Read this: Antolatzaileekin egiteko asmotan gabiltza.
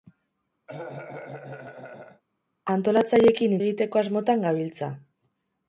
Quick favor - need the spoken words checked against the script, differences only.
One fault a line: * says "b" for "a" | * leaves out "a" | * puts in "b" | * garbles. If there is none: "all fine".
all fine